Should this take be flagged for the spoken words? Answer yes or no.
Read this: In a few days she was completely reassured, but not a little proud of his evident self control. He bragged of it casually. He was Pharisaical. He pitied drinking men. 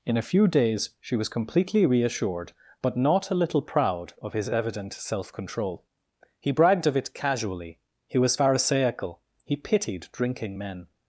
no